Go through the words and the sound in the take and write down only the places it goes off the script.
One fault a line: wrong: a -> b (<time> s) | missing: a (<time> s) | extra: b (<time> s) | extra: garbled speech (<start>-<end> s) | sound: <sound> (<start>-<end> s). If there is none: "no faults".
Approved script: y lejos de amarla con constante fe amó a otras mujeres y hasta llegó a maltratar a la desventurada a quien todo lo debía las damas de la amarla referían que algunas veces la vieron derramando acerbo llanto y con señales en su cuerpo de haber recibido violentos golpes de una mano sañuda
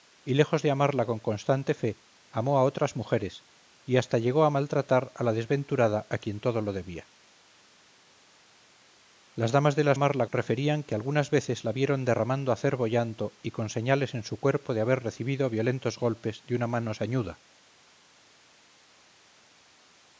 no faults